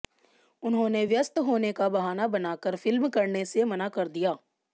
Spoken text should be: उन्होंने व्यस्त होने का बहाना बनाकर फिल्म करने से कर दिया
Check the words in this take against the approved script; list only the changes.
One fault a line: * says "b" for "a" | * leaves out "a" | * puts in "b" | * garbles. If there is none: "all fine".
* puts in "मना"